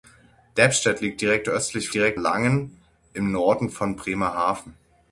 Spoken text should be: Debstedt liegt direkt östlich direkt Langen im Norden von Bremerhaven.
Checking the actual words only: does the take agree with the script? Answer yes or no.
yes